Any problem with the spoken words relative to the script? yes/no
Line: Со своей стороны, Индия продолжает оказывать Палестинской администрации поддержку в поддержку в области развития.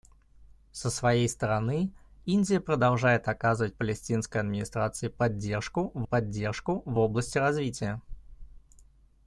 no